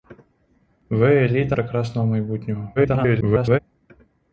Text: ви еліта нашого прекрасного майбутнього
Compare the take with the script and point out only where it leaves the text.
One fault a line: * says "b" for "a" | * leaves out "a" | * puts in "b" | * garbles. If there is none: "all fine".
* leaves out "нашого"
* garbles